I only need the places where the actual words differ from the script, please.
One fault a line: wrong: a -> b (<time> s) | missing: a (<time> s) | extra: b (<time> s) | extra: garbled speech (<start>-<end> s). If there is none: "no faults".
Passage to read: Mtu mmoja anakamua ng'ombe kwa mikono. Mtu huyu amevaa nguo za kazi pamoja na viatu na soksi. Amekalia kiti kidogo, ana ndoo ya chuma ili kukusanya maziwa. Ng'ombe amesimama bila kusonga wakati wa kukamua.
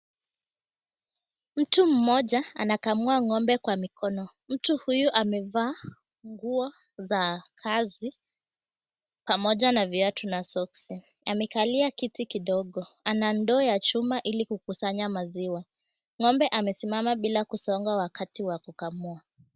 no faults